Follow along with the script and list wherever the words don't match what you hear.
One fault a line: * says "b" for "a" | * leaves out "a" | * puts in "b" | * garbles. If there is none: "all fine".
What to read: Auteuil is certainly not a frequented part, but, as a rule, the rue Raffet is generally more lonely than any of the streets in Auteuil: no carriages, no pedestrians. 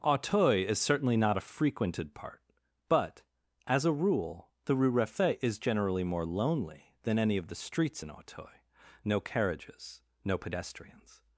all fine